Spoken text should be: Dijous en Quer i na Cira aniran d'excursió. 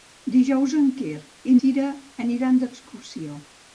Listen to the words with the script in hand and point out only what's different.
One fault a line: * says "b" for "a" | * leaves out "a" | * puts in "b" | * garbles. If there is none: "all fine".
* leaves out "na"